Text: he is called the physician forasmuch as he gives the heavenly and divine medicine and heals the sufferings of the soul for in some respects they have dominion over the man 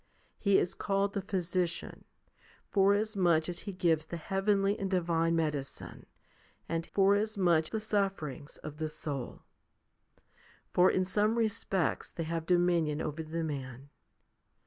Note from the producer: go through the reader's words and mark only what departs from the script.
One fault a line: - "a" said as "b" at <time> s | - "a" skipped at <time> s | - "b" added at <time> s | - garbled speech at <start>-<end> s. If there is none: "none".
- "heals" said as "forasmuch" at 6.9 s